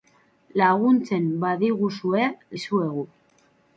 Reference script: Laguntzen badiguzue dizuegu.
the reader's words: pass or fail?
pass